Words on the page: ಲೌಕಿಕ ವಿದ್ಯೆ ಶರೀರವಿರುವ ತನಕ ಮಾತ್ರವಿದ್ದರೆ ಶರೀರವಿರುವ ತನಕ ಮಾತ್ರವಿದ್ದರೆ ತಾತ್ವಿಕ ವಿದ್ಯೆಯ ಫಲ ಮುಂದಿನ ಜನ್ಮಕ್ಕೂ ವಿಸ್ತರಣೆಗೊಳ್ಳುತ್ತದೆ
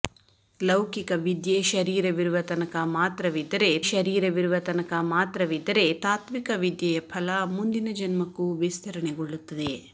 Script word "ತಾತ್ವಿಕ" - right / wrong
right